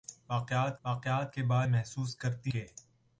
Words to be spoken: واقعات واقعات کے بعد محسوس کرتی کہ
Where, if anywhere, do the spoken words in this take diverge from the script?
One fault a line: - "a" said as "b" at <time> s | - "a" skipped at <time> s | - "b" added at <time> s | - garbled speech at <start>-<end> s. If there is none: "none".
none